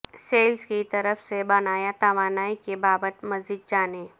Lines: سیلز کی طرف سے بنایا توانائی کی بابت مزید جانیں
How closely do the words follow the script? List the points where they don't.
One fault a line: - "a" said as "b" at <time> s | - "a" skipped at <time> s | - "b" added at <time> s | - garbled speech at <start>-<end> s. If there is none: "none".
none